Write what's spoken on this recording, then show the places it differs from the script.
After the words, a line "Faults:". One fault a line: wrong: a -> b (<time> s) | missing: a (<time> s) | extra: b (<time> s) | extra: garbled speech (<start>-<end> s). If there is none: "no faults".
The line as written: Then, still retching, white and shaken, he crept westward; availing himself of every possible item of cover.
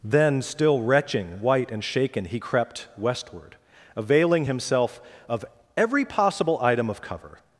Then, still retching, white and shaken, he crept westward; availing himself of every possible item of cover.
Faults:
no faults